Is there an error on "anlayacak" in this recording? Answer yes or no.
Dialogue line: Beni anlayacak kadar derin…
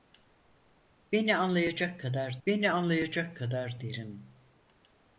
no